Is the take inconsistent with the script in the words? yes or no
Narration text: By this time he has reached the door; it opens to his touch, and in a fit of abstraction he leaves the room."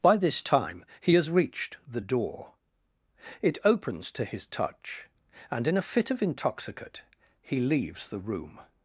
yes